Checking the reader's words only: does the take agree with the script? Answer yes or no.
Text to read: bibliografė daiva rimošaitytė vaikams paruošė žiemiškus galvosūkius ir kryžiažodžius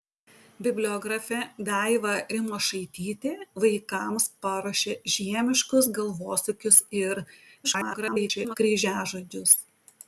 no